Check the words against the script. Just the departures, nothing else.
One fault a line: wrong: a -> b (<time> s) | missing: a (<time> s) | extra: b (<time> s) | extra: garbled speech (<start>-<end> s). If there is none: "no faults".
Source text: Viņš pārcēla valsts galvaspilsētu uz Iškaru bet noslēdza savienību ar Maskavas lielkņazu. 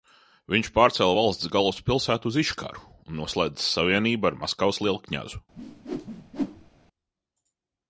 wrong: bet -> un (3.1 s)